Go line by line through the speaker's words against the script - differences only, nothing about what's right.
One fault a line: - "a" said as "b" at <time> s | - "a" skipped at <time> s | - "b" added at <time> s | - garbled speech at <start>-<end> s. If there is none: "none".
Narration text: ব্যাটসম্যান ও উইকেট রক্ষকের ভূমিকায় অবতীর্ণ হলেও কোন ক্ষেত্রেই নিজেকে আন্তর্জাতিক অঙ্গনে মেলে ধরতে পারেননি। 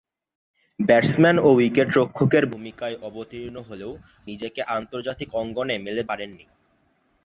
- "কোন ক্ষেত্রেই" skipped at 3.9 s
- "ধরতে" skipped at 6.0 s